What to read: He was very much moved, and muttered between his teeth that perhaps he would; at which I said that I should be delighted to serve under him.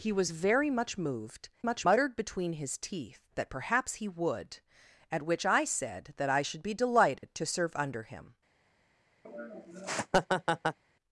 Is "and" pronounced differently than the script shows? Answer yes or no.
yes